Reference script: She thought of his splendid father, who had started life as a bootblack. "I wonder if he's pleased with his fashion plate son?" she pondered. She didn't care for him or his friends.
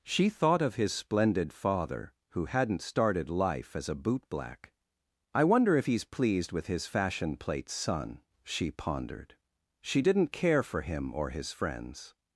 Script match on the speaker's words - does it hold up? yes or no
no